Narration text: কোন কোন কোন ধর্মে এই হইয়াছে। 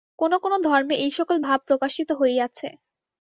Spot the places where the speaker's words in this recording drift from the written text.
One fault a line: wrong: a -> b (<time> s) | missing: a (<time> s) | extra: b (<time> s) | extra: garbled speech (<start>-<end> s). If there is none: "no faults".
missing: কোন (0.5 s)
extra: সকল ভাব প্রকাশিত (1.2 s)